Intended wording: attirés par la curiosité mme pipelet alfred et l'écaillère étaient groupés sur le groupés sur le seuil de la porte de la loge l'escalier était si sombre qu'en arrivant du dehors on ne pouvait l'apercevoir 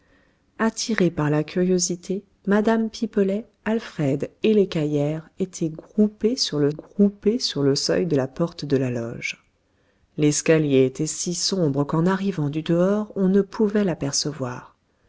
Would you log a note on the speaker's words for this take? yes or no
no